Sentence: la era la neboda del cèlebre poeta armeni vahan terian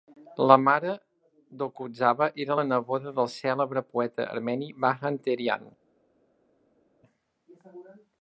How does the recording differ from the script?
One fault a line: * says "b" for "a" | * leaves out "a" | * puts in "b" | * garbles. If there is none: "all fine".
* puts in "mare d'okudzava"